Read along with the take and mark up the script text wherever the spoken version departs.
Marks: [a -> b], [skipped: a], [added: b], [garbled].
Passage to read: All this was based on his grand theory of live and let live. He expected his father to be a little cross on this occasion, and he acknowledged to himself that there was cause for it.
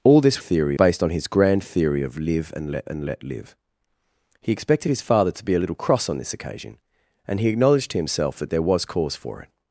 All this [was -> theory] based on his grand theory of live and let [added: and let] live. He expected his father to be a little cross on this occasion, and he acknowledged to himself that there was cause for it.